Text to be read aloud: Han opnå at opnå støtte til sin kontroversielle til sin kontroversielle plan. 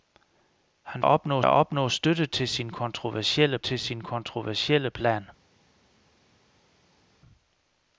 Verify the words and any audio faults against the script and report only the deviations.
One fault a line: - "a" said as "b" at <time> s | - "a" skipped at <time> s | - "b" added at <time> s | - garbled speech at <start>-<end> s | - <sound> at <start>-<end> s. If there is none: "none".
none